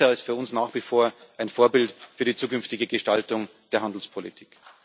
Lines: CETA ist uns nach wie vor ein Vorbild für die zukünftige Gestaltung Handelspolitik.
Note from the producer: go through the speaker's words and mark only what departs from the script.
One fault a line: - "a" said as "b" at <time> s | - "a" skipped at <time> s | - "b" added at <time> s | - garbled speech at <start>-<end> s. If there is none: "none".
- "für" added at 0.2 s
- "der" added at 3.7 s